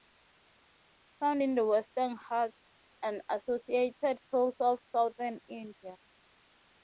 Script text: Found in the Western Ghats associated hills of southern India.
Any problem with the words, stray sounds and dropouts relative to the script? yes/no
yes